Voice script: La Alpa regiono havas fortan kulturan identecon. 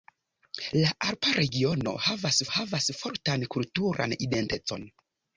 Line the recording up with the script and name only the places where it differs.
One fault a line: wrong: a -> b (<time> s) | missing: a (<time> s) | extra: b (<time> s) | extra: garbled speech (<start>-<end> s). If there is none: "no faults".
extra: havas (2.6 s)